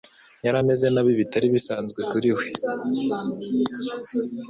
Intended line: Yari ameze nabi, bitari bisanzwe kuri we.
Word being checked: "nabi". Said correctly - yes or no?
yes